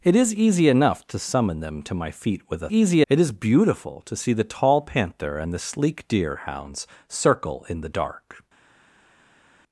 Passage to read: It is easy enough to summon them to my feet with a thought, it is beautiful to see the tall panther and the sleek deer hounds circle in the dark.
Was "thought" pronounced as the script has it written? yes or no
no